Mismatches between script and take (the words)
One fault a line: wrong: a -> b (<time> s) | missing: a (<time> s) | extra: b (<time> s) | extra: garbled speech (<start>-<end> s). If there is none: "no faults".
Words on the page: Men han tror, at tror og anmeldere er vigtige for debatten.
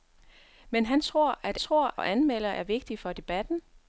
no faults